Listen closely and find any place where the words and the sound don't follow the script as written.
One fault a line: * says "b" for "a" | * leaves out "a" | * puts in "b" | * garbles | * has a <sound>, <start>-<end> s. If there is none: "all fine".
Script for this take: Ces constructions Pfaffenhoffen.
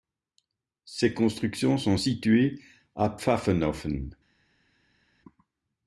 * puts in "sont situées à"